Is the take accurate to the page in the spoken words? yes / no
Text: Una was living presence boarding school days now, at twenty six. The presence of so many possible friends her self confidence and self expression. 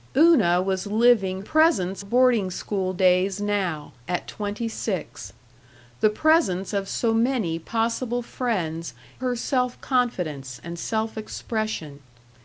yes